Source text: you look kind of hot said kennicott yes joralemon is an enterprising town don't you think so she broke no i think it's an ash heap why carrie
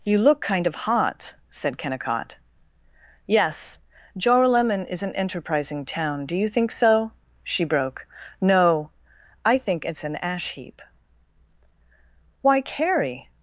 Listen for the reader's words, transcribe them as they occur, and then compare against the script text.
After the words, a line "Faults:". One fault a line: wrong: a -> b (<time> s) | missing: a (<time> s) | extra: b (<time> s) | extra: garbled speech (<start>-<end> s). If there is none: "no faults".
you look kind of hot said kennicott yes joralemon is an enterprising town do you think so she broke no i think it's an ash heap why carrie
Faults:
wrong: don't -> do (6.2 s)